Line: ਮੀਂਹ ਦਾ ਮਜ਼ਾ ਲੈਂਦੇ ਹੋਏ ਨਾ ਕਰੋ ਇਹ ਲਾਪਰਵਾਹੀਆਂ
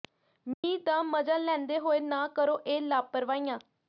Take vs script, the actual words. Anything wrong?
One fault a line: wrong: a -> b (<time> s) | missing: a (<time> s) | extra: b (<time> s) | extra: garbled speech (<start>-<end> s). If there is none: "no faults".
no faults